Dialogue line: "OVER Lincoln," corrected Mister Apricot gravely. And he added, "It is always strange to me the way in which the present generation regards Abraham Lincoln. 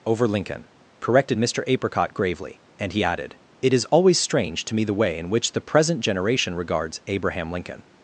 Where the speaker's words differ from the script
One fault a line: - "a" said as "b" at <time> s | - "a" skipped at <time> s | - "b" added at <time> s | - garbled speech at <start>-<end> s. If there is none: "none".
none